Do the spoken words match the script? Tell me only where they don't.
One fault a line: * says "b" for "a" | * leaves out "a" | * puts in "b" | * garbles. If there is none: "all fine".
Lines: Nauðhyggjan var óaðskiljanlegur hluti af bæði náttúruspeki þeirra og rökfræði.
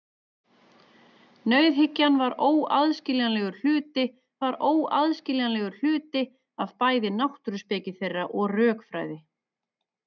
* puts in "var óaðskiljanlegur hluti"